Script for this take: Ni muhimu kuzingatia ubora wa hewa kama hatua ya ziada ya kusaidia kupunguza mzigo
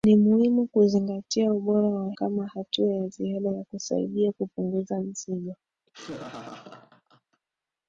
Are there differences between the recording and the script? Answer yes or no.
yes